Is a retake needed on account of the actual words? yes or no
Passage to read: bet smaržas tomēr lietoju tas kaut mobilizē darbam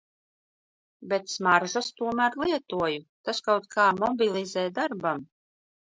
yes